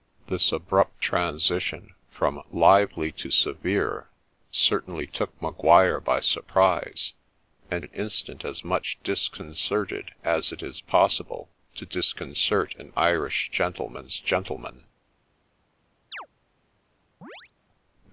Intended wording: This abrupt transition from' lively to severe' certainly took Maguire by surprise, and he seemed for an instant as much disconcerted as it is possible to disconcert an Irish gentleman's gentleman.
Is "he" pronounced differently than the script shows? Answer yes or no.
yes